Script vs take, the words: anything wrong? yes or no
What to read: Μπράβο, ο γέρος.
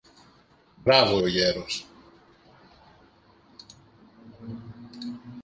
no